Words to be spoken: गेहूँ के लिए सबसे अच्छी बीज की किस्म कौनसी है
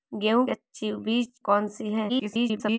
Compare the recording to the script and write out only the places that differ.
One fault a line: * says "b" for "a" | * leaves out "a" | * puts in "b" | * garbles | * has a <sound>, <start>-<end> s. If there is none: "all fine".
* leaves out "के लिए सबसे"
* leaves out "की किस्म"
* garbles